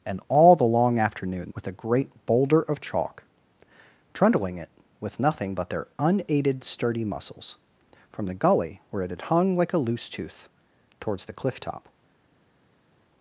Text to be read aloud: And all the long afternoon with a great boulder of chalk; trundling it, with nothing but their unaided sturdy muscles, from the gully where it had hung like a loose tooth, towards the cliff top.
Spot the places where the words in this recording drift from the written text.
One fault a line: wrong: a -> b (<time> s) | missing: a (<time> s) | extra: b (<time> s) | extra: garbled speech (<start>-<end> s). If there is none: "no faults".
no faults